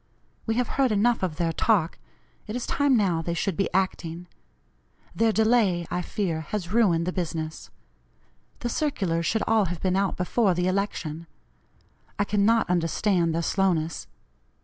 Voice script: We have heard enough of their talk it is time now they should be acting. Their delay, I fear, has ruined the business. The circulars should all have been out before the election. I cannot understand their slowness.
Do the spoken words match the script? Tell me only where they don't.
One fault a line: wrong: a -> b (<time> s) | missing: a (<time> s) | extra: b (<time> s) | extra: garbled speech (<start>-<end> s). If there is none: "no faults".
no faults